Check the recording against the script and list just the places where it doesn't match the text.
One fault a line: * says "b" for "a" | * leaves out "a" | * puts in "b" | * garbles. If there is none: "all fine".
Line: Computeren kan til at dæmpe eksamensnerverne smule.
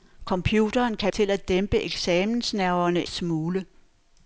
all fine